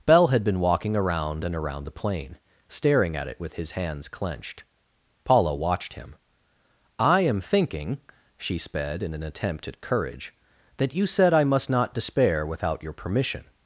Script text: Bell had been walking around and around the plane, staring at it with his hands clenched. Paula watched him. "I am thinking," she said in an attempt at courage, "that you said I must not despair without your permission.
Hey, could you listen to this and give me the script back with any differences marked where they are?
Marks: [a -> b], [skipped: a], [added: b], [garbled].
Bell had been walking around and around the plane, staring at it with his hands clenched. Paula watched him. "I am thinking," she [said -> sped] in an attempt at courage, "that you said I must not despair without your permission.